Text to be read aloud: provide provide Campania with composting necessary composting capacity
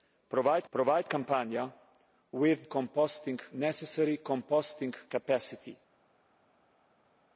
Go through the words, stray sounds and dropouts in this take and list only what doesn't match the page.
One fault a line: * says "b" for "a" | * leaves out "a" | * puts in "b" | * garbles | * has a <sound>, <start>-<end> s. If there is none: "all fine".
all fine